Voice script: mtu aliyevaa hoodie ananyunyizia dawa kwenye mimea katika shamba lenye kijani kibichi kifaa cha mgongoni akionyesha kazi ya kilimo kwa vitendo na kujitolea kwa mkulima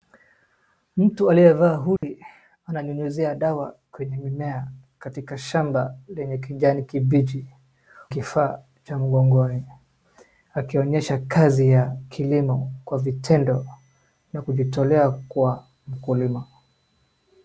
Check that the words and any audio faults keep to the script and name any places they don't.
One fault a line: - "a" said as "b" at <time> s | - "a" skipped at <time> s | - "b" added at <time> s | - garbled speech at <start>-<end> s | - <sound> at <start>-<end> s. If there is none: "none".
- dropout at 2.0-2.0 s